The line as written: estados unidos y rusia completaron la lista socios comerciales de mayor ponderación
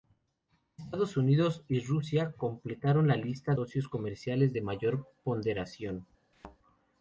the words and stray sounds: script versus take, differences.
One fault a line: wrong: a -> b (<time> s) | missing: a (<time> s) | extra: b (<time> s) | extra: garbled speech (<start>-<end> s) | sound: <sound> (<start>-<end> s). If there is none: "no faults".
sound: thud (6.3-6.6 s)